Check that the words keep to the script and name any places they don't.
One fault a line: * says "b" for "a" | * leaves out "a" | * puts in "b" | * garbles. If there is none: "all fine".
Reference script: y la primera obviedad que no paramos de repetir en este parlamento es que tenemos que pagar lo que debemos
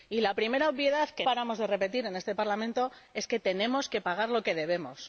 * leaves out "no"